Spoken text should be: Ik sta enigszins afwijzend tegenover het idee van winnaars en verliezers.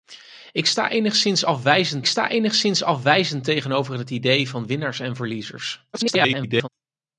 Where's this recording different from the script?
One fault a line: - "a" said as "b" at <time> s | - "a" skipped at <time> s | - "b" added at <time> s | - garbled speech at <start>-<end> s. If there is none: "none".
- "sta enigszins afwijzend" added at 2.0 s
- garbled speech at 5.9-6.7 s